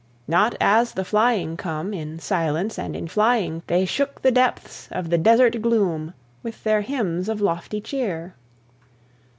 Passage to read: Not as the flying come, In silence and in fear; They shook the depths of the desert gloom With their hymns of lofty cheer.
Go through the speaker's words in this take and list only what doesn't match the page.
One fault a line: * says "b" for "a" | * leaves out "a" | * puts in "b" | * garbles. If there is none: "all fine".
* says "flying" for "fear"